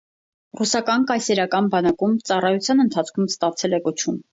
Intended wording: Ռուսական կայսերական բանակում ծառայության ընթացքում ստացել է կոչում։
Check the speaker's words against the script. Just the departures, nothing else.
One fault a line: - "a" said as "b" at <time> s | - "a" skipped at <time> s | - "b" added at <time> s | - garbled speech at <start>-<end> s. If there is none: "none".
none